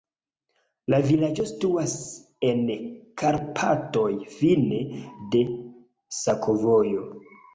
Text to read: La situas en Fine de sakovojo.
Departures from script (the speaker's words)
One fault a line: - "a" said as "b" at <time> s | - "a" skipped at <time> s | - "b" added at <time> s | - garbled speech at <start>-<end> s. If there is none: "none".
- "vilaĝo" added at 1.1 s
- "Karpatoj" added at 3.2 s